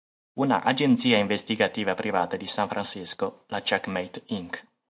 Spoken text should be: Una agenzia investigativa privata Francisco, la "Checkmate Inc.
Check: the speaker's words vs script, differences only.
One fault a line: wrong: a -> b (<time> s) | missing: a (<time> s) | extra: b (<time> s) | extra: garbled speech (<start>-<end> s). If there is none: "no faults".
extra: di San (2.4 s)